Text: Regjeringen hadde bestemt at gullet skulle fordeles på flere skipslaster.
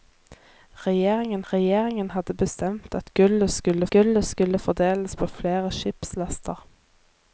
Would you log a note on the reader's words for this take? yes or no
yes